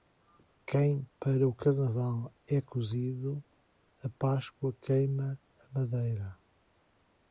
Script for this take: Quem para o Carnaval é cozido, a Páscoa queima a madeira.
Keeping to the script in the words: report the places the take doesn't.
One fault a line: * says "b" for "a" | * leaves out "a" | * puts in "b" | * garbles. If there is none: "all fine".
all fine